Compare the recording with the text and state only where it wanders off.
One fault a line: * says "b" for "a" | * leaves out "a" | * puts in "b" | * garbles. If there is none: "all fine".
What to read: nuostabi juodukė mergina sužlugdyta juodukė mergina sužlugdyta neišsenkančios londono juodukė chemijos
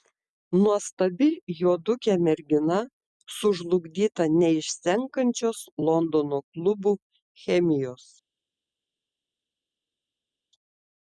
* leaves out "juodukė mergina sužlugdyta"
* says "klubų" for "juodukė"